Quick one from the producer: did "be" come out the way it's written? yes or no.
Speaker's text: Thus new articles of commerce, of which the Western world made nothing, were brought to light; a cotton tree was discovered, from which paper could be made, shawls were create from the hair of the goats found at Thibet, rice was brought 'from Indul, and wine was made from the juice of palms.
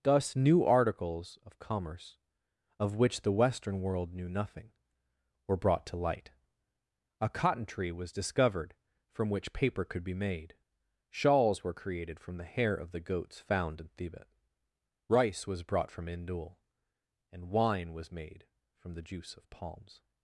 yes